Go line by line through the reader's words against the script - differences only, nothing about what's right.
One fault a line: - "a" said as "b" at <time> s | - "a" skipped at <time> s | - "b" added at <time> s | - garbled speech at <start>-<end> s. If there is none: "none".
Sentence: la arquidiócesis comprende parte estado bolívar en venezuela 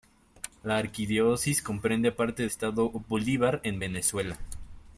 none